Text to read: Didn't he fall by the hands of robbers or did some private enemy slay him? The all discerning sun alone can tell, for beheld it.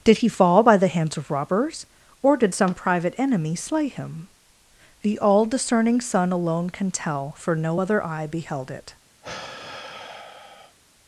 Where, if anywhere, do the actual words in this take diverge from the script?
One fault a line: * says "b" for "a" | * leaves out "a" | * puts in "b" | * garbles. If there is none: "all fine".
* says "Did" for "Didn't"
* puts in "no other eye"